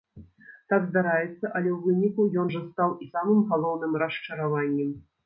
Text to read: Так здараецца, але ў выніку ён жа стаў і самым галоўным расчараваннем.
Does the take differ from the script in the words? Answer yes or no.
no